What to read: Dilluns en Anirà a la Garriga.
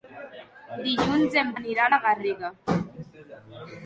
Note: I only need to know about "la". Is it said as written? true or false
true